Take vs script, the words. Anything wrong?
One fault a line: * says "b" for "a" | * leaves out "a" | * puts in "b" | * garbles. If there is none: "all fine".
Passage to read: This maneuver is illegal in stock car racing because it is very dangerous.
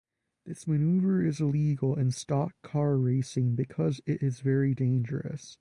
all fine